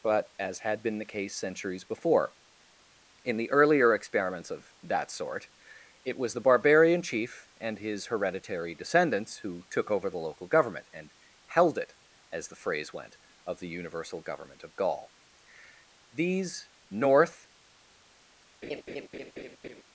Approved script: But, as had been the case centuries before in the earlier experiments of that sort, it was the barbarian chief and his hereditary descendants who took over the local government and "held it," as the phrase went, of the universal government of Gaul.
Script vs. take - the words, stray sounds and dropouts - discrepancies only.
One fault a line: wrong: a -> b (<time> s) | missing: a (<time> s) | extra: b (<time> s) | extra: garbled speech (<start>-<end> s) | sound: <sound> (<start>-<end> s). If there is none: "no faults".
extra: These North (16.1 s)
sound: laugh (18.6-19.8 s)